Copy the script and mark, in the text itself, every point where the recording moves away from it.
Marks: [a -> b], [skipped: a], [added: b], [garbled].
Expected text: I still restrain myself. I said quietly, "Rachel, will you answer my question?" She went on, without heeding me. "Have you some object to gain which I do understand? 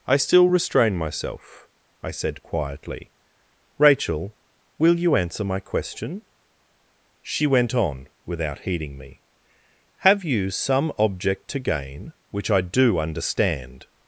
I still restrain myself. I said quietly, "Rachel, will you answer my question?" She went on, without heeding me. "Have you some object to gain which I do understand?